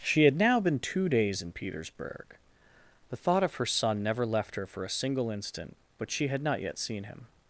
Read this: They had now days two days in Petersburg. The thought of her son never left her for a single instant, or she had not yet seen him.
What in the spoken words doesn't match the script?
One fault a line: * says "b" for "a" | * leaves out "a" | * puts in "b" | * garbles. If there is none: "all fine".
* says "She" for "They"
* says "been" for "days"
* says "but" for "or"